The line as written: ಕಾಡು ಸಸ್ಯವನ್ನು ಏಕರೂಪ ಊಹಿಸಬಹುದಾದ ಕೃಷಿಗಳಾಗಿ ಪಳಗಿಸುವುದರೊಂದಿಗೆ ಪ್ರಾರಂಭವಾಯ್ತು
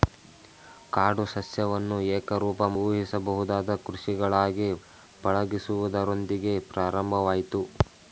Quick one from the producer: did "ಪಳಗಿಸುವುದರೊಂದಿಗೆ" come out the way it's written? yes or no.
yes